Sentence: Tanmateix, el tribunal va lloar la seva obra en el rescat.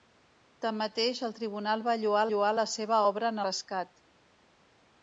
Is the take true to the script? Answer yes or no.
no